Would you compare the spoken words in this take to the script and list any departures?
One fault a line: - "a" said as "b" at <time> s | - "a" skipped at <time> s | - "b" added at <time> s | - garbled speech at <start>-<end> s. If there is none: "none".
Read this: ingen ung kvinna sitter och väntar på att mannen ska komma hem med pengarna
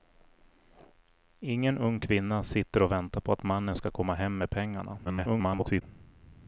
- garbled speech at 5.0-5.8 s